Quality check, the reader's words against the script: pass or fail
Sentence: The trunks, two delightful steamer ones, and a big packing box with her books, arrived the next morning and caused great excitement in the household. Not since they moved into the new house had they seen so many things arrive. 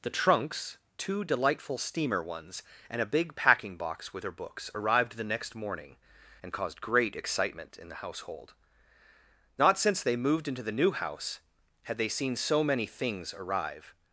pass